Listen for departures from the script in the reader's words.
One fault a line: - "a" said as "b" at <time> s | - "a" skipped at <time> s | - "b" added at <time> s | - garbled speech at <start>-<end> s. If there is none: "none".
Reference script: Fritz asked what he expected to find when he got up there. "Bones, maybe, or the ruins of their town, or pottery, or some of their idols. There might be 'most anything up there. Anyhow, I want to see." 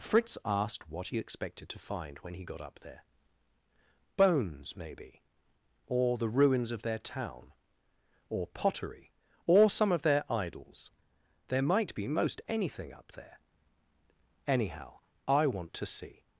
none